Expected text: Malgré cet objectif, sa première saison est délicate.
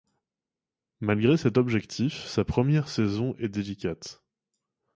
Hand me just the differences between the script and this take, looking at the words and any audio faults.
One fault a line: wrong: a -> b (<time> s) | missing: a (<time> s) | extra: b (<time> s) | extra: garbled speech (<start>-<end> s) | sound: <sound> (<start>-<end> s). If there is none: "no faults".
no faults